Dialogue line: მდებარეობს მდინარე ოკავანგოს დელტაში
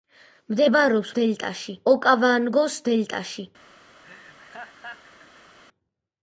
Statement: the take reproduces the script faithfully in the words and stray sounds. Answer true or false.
false